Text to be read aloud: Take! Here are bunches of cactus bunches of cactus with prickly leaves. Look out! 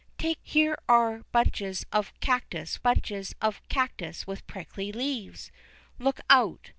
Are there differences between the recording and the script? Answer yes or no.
no